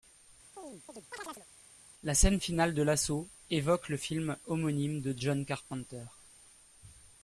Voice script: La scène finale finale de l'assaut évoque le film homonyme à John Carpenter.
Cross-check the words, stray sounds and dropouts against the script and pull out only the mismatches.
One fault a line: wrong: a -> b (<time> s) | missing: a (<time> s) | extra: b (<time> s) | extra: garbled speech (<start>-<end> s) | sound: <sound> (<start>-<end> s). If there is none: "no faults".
sound: chirp (0.6-1.5 s)
missing: finale (2.7 s)
wrong: à -> de (5.0 s)